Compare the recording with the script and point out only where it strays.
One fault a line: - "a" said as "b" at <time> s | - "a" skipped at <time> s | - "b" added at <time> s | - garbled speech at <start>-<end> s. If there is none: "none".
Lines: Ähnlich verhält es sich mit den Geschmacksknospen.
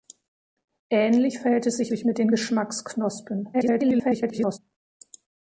- "sich" added at 1.9 s
- garbled speech at 3.5-4.6 s